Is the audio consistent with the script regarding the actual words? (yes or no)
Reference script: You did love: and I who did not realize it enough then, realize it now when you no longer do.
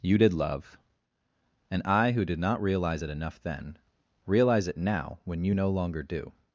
yes